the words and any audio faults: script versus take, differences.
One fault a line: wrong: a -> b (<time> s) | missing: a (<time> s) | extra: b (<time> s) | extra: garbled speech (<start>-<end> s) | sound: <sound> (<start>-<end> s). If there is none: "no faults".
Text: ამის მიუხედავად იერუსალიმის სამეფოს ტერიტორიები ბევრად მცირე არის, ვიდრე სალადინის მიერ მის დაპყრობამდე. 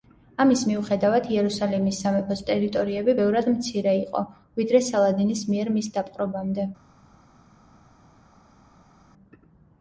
wrong: არის -> იყო (4.0 s)